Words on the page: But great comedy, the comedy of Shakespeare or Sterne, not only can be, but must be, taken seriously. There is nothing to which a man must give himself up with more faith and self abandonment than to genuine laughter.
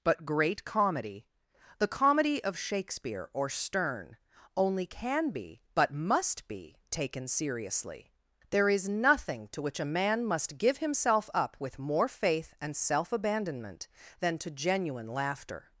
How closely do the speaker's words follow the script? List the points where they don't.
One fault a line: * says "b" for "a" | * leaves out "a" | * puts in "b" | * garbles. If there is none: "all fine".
* leaves out "not"